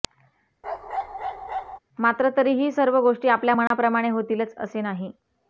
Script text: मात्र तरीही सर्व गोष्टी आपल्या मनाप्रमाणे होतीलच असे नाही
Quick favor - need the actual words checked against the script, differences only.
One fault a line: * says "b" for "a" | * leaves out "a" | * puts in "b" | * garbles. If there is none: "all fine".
all fine